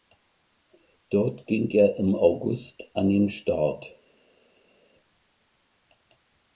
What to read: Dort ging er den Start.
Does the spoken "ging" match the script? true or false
true